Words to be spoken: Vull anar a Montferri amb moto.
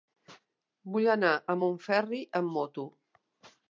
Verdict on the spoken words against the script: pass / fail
pass